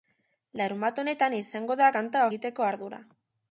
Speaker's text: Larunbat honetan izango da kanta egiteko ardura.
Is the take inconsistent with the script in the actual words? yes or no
no